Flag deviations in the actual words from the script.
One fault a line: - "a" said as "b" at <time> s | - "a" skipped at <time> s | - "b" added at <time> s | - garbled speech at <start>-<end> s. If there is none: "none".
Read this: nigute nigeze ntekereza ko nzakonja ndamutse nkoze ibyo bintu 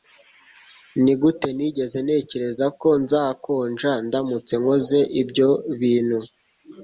none